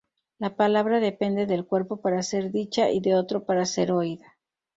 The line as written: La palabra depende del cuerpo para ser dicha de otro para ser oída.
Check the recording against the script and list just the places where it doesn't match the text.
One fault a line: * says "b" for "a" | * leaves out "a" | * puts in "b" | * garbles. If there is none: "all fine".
* puts in "y"